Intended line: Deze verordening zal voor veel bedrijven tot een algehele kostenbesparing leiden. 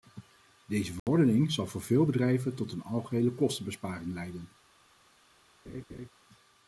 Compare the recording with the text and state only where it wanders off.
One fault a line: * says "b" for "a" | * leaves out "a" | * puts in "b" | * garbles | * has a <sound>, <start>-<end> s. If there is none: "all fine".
* has a dropout, 1.0-1.1 s
* has a laugh, 5.7-6.1 s